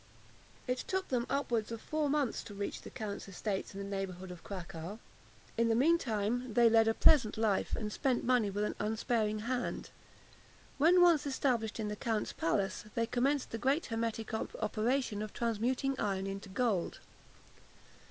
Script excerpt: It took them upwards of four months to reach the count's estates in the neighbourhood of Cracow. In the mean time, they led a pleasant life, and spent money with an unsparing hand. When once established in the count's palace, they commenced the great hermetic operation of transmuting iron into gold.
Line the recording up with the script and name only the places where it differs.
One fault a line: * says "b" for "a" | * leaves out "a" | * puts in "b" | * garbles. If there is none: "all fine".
all fine